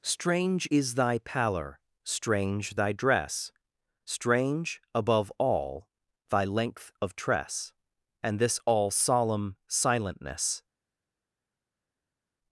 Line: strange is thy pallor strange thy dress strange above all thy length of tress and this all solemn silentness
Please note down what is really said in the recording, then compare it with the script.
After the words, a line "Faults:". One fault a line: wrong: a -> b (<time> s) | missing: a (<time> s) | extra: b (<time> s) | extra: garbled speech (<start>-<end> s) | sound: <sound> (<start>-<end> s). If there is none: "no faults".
strange is thy pallor strange thy dress strange above all thy length of tress and this all solemn silentness
Faults:
no faults